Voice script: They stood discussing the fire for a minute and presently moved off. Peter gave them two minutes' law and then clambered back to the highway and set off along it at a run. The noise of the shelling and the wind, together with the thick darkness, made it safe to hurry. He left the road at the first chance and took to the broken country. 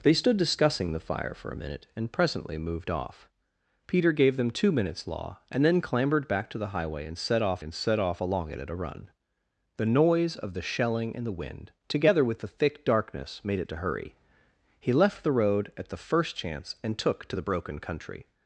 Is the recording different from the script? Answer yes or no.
yes